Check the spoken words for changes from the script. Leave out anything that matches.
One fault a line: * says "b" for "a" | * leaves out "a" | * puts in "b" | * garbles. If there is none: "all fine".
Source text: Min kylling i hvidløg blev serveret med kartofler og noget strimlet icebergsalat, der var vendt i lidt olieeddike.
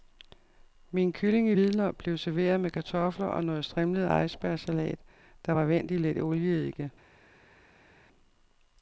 all fine